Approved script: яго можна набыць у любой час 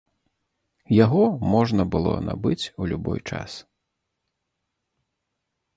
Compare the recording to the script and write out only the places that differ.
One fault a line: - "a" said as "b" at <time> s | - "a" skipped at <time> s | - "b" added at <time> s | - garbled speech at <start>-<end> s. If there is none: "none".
- "было" added at 2.0 s